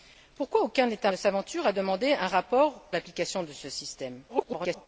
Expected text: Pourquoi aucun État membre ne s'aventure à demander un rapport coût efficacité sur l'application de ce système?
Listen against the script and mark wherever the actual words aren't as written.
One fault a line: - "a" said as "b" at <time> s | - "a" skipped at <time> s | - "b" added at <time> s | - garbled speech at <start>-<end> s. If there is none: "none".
- "membre" skipped at 1.1 s
- "coût efficacité sur" skipped at 2.9 s
- garbled speech at 4.3-4.9 s